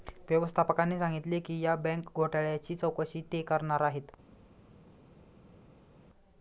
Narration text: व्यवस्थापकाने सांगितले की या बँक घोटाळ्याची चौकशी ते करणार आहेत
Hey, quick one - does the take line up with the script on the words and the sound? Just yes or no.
yes